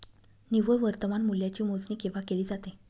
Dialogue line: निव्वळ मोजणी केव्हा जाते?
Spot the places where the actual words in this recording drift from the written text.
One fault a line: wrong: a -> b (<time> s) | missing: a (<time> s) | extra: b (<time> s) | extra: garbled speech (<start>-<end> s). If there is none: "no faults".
extra: वर्तमान मूल्याची (0.8 s)
extra: केली (2.3 s)